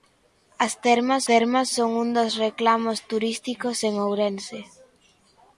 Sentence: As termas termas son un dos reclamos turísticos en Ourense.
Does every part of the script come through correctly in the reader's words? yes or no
yes